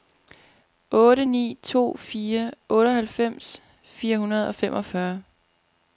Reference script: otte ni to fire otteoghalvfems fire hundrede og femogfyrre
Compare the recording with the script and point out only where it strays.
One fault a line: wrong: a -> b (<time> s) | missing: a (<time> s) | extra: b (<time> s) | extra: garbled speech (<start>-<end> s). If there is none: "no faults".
no faults